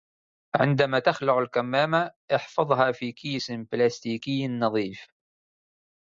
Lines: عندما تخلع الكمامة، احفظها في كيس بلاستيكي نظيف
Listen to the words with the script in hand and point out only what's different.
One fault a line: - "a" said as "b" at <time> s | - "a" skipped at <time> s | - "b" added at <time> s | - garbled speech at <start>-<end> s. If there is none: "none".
none